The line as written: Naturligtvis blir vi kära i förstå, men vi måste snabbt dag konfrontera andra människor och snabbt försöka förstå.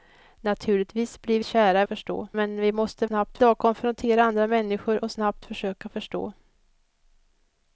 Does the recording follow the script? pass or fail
pass